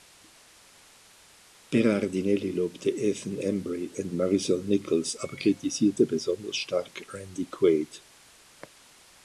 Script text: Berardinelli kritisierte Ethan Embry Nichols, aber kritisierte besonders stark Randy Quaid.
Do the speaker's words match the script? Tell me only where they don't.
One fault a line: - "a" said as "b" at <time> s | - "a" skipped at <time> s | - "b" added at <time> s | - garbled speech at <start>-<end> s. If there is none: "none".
- "kritisierte" said as "lobte" at 2.5 s
- "und Marisol" added at 4.0 s